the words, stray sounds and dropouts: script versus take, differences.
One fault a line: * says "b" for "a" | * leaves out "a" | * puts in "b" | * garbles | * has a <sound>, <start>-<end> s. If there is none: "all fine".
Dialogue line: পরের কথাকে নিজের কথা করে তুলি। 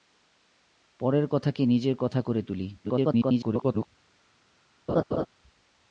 * garbles
* has a laugh, 4.9-5.3 s